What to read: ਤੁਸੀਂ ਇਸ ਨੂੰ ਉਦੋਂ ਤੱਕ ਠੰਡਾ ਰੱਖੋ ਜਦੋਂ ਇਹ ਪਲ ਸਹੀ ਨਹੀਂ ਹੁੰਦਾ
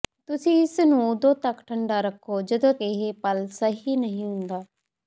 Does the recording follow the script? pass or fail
pass